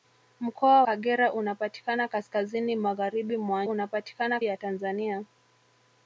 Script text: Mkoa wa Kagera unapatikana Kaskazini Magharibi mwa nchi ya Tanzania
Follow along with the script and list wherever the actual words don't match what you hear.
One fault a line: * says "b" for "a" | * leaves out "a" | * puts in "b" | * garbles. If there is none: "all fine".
* leaves out "wa"
* says "unapatikana" for "nchi"